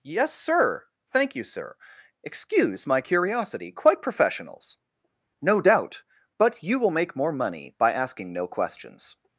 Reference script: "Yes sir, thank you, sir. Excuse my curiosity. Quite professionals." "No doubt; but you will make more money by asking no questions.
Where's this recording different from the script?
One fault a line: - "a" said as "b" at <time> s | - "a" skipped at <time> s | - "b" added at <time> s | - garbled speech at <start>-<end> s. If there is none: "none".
none